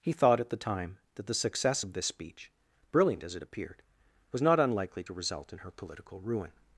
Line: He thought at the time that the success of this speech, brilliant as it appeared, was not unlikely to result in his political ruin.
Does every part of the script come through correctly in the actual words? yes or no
no